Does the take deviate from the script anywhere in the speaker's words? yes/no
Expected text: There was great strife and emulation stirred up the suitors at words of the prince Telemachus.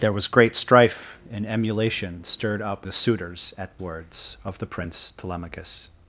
no